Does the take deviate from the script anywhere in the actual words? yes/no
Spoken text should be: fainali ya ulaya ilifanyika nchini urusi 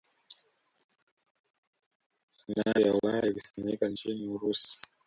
no